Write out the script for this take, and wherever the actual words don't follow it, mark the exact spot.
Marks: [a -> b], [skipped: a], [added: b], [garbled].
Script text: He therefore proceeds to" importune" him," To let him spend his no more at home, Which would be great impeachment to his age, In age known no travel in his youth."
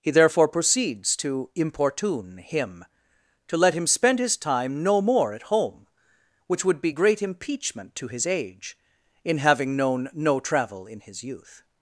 He therefore proceeds to" importune" him," To let him spend his [added: time] no more at home, Which would be great impeachment to his age, In [age -> having] known no travel in his youth."